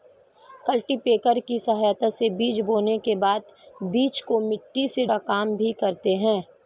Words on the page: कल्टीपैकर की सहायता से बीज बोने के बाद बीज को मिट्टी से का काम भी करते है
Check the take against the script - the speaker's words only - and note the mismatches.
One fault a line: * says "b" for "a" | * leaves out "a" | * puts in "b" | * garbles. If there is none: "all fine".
all fine